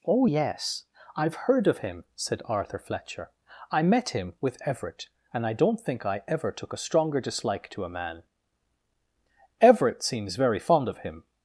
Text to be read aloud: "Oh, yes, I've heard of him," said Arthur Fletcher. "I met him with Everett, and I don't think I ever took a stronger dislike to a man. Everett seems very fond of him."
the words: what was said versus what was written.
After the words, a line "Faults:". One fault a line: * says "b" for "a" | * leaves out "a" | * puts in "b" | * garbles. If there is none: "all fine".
"Oh, yes, I've heard of him," said Arthur Fletcher. "I met him with Everett, and I don't think I ever took a stronger dislike to a man. Everett seems very fond of him."
Faults:
all fine